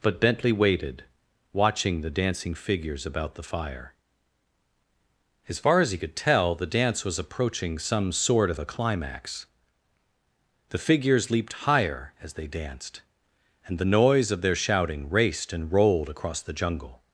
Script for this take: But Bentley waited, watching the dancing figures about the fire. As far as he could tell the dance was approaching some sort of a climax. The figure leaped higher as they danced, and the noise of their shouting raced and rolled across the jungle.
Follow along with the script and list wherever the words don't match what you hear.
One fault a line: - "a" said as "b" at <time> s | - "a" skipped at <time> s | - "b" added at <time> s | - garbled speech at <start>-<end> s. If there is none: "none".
- "figure" said as "figures" at 10.8 s